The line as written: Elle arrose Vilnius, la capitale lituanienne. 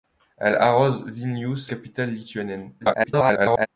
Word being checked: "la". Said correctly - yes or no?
no